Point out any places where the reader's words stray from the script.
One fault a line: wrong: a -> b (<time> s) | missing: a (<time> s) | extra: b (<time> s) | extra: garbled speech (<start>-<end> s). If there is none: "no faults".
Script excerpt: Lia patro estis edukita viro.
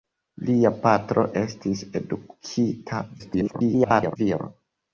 extra: garbled speech (3.2-4.2 s)